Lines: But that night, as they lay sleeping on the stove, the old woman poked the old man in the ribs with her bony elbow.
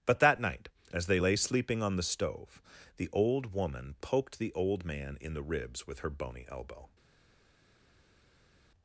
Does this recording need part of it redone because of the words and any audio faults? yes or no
no